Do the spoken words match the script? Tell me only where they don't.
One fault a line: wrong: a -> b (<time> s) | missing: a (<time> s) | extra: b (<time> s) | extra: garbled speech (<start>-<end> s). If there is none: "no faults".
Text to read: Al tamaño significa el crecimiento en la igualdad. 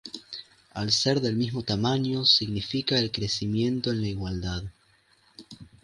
extra: ser del mismo (0.9 s)